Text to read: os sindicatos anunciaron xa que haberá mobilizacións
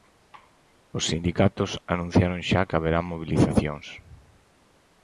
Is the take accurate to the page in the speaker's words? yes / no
yes